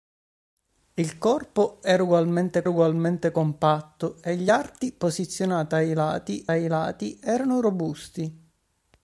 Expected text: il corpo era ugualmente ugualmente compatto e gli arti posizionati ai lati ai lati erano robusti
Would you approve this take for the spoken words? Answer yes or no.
yes